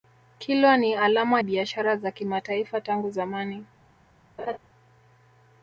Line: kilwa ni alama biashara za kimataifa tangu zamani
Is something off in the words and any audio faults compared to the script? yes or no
yes